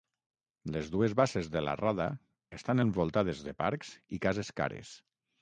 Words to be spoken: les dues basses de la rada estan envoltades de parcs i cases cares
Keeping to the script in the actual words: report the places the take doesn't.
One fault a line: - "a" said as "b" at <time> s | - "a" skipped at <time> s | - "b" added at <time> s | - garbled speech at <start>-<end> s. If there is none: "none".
none